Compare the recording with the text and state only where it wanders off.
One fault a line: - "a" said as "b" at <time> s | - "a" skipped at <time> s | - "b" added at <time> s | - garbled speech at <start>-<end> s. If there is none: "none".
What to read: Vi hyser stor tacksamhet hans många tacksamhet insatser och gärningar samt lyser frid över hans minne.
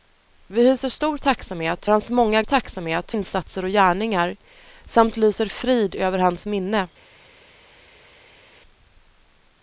none